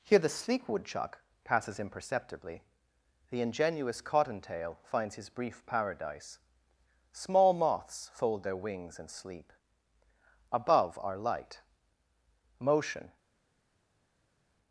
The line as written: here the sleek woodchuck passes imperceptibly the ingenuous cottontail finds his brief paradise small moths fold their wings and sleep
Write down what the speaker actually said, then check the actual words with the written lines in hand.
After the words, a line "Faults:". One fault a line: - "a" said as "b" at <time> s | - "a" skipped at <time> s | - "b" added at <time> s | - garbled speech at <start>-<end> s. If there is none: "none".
here the sleek woodchuck passes imperceptibly the ingenuous cottontail finds his brief paradise small moths fold their wings and sleep above are light motion
Faults:
- "above are light motion" added at 10.5 s